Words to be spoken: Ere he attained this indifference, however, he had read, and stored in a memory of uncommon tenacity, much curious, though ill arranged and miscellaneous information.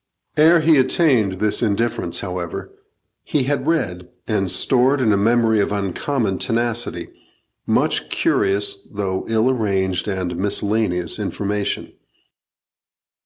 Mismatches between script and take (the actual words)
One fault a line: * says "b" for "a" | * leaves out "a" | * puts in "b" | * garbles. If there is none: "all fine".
all fine